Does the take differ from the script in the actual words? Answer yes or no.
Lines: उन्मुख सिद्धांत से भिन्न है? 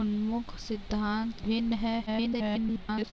yes